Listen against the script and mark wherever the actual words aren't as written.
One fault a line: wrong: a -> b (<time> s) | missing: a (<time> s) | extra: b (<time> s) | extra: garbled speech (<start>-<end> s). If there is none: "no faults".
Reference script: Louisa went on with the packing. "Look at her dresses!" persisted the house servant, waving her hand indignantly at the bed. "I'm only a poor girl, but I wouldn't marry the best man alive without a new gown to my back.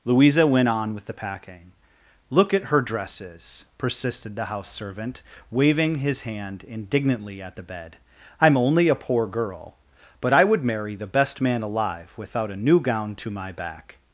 wrong: her -> his (6.0 s)
wrong: wouldn't -> would (10.4 s)